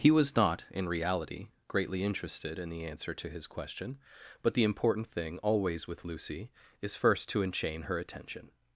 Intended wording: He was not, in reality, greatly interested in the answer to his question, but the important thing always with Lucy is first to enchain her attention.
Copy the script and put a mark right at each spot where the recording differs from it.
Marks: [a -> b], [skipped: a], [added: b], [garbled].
He was not, in reality, greatly interested in the answer to his question, but the important thing always with Lucy is first to enchain her attention.